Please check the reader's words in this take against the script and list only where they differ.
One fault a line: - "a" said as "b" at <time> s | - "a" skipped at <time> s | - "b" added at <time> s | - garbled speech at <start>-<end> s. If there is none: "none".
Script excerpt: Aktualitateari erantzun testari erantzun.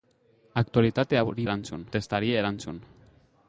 none